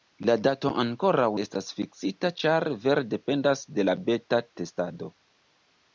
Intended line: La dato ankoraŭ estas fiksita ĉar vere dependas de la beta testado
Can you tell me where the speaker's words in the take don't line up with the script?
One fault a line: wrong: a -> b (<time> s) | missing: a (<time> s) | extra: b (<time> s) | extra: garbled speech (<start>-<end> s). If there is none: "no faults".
no faults